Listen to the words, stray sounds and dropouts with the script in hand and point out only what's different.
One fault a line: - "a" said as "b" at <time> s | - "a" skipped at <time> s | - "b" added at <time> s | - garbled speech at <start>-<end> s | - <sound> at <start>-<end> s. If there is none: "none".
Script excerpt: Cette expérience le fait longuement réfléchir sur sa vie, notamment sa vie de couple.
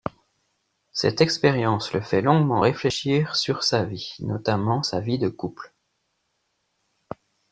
none